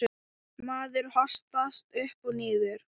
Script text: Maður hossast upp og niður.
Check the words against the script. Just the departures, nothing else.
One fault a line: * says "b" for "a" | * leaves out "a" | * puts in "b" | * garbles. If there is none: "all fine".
all fine